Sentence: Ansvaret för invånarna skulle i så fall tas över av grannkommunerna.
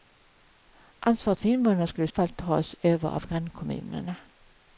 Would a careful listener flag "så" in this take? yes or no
yes